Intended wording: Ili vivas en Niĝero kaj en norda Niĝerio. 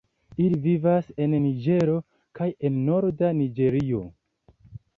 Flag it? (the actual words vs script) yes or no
no